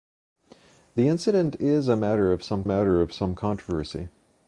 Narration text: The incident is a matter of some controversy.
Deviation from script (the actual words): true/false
true